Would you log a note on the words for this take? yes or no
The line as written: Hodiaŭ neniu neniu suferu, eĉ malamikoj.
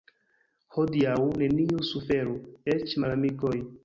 yes